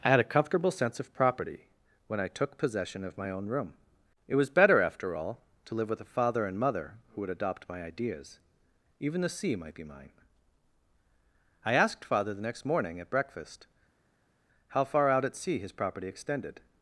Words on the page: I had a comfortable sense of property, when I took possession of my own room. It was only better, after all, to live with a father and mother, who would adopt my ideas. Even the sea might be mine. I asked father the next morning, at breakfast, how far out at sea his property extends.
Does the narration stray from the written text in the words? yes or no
yes